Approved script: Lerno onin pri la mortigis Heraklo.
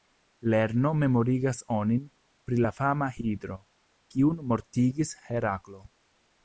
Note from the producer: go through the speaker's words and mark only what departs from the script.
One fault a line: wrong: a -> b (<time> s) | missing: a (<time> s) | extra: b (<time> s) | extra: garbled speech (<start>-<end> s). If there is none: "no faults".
extra: memorigas (1.0 s)
extra: fama Hidro kiun (2.8 s)